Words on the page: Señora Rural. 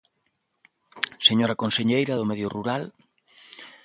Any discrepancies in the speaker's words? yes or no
yes